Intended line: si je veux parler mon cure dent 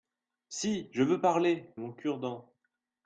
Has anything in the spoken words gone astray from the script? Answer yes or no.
no